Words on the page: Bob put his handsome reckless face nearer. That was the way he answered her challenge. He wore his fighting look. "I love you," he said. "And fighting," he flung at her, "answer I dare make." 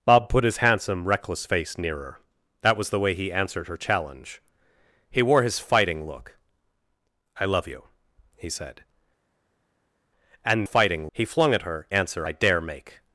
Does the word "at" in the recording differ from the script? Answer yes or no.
no